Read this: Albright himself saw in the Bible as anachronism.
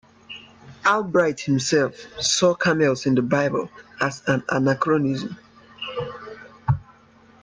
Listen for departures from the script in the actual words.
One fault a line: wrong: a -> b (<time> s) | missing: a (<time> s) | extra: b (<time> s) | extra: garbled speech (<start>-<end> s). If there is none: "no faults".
extra: camels (2.5 s)
extra: an (4.3 s)